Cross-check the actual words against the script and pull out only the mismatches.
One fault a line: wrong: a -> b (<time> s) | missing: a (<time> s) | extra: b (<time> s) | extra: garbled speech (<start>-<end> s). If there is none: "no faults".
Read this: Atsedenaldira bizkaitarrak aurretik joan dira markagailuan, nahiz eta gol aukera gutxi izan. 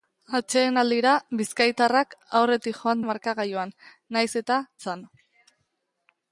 missing: dira (3.0 s)
missing: gol aukera gutxi (4.6 s)